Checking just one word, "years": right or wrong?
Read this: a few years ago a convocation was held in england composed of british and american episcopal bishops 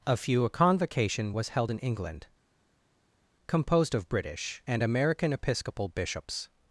wrong